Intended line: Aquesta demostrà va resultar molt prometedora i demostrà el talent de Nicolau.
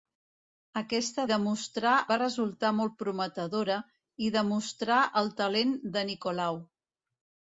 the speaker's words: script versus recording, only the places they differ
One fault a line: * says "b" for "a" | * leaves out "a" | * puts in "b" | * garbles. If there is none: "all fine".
all fine